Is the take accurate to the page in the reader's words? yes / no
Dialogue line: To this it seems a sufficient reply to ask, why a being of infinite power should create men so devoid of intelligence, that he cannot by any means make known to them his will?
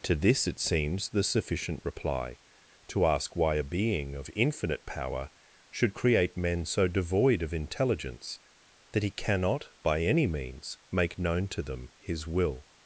no